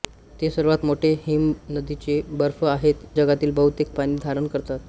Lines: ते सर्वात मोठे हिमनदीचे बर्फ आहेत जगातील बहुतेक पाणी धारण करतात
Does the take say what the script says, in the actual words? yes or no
yes